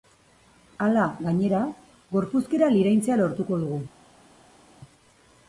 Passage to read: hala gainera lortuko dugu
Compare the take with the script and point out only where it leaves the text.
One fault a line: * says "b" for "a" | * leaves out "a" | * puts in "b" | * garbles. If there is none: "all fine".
* puts in "gorpuzkera liraintzea"